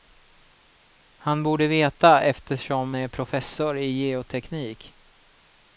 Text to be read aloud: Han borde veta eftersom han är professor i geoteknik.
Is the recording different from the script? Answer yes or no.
yes